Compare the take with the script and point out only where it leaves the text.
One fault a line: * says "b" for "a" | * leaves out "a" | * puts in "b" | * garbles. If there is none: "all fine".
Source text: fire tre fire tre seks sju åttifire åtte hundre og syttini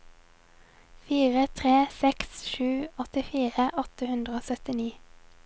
* leaves out "fire tre"